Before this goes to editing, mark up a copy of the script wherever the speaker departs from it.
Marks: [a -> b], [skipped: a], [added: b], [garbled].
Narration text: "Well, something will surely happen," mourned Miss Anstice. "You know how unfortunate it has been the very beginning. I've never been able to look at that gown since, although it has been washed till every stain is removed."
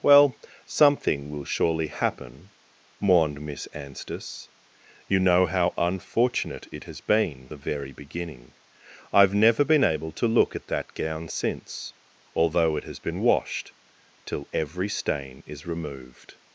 "Well, something will surely happen," mourned Miss Anstice. "You know how unfortunate it has been the very beginning. I've never been able to look at that gown since, although it has been washed till every stain is removed."